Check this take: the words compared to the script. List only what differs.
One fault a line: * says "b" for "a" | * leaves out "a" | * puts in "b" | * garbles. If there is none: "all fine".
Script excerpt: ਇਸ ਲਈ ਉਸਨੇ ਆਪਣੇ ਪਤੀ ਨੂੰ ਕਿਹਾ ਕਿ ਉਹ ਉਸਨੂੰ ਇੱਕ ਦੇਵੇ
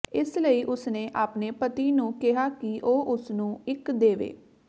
all fine